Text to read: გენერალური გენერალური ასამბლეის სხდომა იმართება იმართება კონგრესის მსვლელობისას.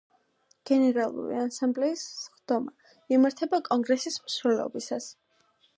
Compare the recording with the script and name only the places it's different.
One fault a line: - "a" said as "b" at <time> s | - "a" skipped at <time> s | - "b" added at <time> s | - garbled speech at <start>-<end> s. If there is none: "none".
- "გენერალური" skipped at 1.4 s
- "იმართება" skipped at 3.6 s